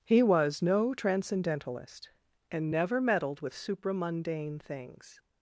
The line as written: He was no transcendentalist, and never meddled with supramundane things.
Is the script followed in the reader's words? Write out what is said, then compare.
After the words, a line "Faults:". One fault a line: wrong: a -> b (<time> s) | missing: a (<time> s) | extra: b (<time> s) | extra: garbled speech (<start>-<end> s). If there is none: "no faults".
He was no transcendentalist, and never meddled with supramundane things.
Faults:
no faults